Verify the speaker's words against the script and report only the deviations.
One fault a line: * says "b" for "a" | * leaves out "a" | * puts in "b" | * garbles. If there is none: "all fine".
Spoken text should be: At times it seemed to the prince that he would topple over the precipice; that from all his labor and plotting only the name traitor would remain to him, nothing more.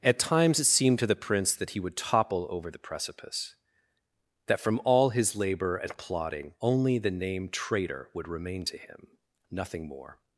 all fine